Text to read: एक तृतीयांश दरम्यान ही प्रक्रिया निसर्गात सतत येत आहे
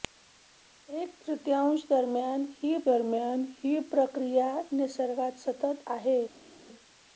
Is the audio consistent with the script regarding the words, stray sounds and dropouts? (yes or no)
no